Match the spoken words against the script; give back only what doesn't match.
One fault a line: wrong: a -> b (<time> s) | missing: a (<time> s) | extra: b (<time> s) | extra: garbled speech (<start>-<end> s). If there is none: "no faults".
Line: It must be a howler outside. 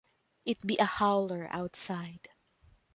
missing: must (0.7 s)